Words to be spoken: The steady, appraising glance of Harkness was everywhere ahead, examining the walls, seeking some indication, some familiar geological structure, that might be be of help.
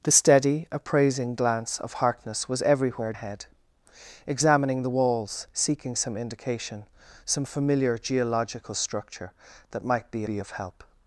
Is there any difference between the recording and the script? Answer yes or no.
no